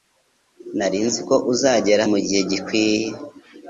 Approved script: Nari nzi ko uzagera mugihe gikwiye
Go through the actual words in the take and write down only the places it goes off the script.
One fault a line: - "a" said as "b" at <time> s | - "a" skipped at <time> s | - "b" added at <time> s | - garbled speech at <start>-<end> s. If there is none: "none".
none